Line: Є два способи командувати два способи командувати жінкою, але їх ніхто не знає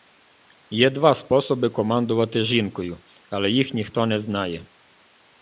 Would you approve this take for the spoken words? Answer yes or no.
no